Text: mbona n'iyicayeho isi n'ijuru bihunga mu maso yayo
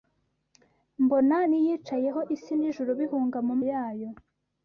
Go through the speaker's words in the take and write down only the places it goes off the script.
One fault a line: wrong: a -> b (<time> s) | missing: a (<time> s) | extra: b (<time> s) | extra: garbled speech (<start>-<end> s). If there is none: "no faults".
missing: maso (3.6 s)